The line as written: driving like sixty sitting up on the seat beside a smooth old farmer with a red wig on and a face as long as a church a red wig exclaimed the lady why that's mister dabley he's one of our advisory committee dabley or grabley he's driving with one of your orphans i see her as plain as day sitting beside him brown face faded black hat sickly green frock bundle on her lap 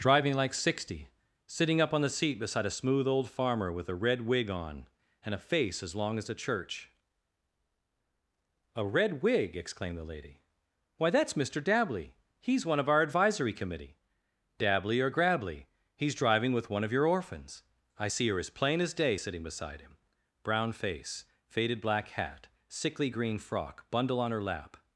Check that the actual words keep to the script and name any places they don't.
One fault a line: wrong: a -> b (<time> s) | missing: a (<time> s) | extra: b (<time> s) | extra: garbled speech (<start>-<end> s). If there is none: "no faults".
no faults